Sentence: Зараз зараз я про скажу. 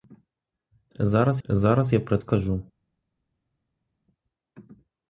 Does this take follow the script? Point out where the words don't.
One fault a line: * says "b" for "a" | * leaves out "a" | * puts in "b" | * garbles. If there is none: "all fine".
all fine